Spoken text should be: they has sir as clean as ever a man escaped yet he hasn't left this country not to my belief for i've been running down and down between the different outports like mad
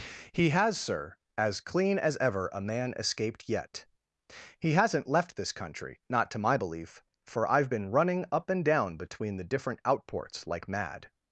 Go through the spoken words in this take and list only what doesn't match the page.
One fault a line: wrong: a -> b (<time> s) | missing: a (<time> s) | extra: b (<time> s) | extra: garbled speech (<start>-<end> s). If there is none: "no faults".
wrong: they -> he (0.3 s)
wrong: down -> up (8.3 s)